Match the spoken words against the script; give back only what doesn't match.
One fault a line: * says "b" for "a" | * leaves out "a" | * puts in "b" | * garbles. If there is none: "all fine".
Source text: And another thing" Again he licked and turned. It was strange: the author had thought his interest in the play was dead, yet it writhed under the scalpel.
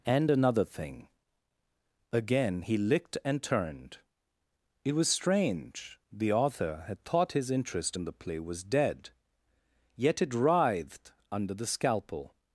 all fine